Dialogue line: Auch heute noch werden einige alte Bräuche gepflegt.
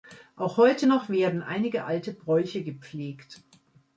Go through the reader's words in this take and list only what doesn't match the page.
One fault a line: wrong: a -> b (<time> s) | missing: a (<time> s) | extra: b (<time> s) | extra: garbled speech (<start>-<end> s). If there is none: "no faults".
no faults